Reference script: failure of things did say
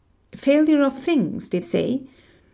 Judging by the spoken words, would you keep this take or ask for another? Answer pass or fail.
pass